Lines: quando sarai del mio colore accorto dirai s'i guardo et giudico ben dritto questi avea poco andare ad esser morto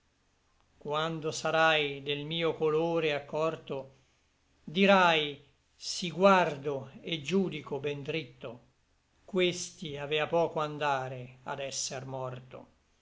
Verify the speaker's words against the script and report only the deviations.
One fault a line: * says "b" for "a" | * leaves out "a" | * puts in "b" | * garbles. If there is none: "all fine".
all fine